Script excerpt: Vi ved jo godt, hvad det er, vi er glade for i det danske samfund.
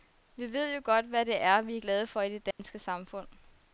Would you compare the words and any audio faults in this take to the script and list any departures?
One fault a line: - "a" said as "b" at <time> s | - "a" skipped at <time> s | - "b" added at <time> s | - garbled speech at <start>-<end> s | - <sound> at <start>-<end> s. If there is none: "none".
- dropout at 2.5-2.6 s